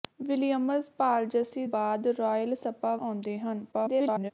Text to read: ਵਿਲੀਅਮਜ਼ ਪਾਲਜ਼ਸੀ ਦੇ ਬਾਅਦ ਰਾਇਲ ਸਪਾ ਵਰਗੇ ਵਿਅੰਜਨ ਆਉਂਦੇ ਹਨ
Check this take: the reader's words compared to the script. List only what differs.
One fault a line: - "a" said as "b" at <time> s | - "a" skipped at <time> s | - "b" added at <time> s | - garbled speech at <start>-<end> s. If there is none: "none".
- "ਦੇ" skipped at 1.6 s
- "ਵਰਗੇ ਵਿਅੰਜਨ" skipped at 3.0 s
- garbled speech at 3.7-4.3 s